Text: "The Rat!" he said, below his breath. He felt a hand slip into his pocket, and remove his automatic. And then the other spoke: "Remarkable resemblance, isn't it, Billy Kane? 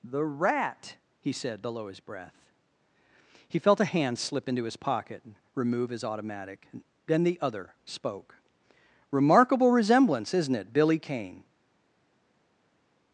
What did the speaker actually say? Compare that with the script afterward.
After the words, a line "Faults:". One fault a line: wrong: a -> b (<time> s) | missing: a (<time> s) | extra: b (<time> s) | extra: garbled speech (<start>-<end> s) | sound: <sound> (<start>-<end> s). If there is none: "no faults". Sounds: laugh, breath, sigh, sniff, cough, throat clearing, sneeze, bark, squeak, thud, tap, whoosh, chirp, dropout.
"The Rat!" he said, below his breath. He felt a hand slip into his pocket, and remove his automatic. then the other spoke: "Remarkable resemblance, isn't it, Billy Kane?
Faults:
missing: And (6.7 s)